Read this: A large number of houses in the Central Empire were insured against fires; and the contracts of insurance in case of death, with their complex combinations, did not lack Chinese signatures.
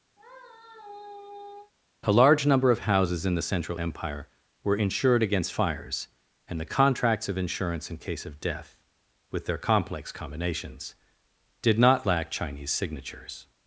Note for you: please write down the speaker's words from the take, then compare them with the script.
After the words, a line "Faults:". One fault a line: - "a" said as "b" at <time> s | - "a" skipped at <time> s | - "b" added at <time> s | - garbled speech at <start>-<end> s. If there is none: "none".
A large number of houses in the Central Empire were insured against fires; and the contracts of insurance in case of death, with their complex combinations, did not lack Chinese signatures.
Faults:
none